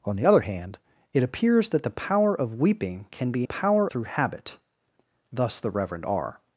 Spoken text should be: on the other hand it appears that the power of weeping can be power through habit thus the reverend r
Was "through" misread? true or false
false